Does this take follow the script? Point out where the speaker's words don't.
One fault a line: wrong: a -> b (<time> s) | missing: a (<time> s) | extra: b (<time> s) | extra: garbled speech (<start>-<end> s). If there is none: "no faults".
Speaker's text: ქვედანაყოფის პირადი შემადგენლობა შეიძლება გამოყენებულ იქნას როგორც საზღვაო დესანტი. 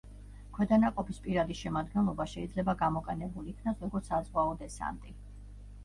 no faults